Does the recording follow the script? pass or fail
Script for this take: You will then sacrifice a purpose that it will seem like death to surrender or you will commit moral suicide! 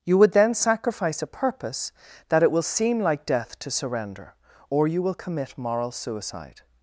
fail